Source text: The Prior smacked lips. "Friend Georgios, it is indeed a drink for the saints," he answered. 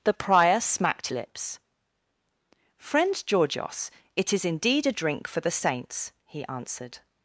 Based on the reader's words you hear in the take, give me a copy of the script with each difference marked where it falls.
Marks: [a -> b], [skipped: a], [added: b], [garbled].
The Prior smacked lips. "Friend Georgios, it is indeed a drink for the saints," he answered.